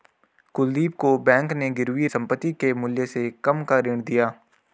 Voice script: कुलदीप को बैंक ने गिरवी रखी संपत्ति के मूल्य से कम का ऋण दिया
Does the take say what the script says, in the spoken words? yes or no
no